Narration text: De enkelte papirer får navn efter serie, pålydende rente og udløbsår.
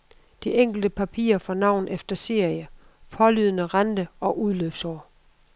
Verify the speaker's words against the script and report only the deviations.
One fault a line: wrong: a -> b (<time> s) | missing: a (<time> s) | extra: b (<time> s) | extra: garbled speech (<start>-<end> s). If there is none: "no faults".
no faults